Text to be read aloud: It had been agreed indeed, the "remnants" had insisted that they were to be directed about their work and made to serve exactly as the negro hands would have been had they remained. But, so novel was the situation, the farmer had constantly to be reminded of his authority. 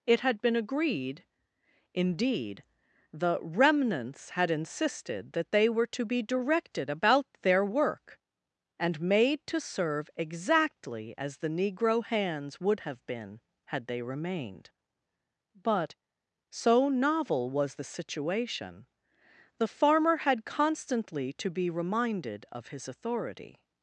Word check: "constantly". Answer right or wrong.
right